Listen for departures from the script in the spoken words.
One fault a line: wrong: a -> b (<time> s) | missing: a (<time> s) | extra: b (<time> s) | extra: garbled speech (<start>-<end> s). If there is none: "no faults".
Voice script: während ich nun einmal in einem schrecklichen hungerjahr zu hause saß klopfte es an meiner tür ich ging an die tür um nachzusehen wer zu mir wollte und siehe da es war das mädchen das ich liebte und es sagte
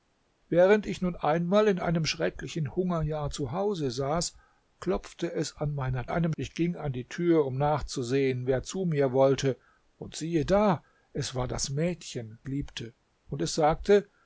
wrong: tür -> einem (6.1 s)
missing: das ich (12.4 s)